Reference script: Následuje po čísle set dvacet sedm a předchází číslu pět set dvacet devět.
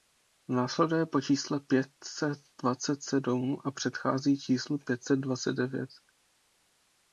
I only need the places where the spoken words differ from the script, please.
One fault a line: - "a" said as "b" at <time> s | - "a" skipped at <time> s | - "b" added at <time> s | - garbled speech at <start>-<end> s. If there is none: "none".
- "pět" added at 1.6 s